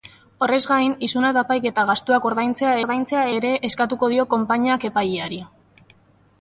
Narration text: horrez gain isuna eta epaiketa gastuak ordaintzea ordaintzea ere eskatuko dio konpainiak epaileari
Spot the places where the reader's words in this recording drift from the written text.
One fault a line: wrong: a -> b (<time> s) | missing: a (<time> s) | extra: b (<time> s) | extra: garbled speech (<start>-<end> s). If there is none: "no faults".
no faults